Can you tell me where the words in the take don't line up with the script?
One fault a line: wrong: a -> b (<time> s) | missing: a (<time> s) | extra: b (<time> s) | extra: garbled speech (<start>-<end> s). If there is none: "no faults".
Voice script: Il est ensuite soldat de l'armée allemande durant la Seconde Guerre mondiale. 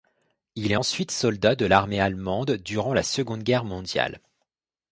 no faults